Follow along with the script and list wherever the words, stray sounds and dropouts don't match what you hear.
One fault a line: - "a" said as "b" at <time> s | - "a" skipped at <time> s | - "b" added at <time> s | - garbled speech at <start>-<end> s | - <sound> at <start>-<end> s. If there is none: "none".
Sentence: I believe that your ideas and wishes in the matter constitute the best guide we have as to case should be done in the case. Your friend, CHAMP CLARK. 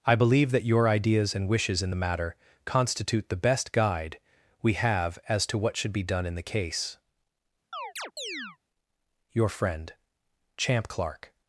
- "case" said as "what" at 5.6 s
- chirp at 7.7-8.6 s